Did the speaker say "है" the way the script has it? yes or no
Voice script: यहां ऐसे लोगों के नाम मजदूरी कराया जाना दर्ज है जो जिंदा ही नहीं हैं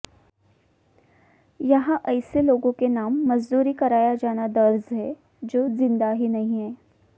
yes